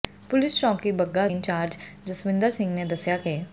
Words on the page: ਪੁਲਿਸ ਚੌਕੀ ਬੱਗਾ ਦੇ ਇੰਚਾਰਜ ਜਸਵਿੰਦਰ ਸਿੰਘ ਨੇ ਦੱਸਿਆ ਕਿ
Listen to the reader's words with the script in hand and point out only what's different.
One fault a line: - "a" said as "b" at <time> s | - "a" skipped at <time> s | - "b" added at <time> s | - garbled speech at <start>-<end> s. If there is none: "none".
- "ਦੇ" skipped at 1.3 s